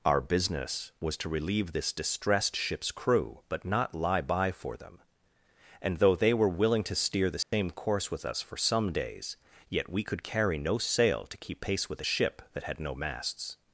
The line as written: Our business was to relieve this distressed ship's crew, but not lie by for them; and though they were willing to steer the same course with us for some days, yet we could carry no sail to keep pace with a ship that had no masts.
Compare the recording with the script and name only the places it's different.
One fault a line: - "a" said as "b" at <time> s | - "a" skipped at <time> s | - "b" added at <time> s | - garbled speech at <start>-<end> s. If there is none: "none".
none